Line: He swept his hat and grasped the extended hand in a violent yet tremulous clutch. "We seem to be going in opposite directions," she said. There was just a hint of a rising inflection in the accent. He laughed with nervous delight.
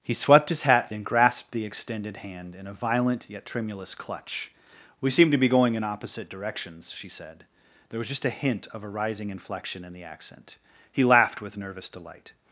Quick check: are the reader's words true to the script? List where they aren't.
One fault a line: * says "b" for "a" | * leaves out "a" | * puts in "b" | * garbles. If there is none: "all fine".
all fine